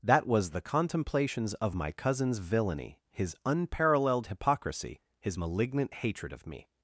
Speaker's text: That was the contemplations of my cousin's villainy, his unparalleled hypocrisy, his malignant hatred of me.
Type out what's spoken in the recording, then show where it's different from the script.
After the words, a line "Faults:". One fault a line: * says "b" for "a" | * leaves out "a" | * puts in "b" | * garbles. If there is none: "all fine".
That was the contemplations of my cousin's villainy, his unparalleled hypocrisy, his malignant hatred of me.
Faults:
all fine